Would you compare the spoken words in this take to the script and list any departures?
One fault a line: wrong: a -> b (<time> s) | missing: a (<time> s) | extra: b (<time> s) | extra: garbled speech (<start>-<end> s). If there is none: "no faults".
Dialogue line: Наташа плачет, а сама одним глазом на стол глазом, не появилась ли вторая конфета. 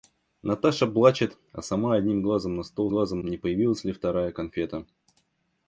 no faults